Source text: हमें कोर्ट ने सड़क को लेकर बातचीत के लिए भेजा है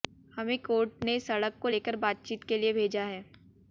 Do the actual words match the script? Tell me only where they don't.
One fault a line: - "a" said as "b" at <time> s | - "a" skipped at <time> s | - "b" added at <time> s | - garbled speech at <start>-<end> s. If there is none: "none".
none